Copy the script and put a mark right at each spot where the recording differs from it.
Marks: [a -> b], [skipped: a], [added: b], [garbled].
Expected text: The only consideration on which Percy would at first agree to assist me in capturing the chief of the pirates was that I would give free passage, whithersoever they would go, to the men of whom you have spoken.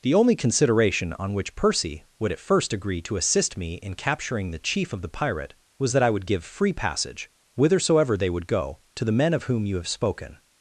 The only consideration on which Percy would at first agree to assist me in capturing the chief of the [pirates -> pirate] was that I would give free passage, whithersoever they would go, to the men of whom you have spoken.